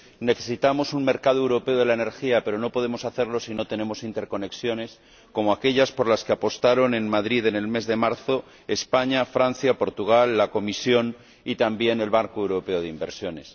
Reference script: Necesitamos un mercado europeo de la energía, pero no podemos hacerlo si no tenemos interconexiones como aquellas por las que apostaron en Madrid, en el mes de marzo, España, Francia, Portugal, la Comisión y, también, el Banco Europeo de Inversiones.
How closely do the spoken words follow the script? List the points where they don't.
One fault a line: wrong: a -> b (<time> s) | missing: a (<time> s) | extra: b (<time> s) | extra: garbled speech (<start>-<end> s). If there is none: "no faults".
no faults